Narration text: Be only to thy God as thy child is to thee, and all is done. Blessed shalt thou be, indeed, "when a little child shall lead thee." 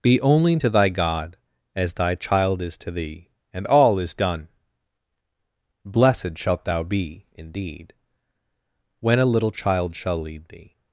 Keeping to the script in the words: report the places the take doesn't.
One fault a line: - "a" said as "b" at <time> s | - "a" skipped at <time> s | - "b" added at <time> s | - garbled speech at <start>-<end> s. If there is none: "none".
none